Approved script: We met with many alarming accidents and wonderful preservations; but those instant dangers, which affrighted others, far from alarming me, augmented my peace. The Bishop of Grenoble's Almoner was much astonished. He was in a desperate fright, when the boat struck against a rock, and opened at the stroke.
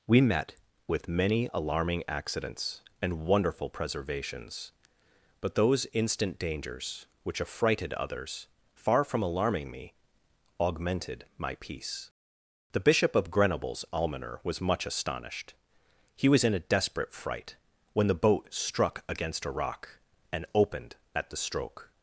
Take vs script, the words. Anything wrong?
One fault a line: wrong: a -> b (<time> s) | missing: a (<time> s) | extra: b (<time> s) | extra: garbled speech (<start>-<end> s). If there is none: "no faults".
no faults